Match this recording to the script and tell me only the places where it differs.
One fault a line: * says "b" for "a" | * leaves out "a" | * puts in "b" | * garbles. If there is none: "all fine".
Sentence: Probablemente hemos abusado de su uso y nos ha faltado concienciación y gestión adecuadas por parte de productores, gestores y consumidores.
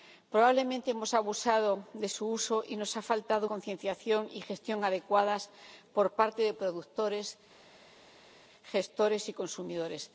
all fine